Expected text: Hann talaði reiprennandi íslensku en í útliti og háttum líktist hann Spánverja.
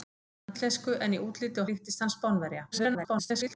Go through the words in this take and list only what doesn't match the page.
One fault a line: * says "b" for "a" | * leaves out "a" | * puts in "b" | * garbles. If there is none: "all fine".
* leaves out "talaði reiprennandi"
* leaves out "háttum"
* garbles